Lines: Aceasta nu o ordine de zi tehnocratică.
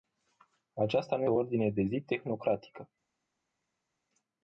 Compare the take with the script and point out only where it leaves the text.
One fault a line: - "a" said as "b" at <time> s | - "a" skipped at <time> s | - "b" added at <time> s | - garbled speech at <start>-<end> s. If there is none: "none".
none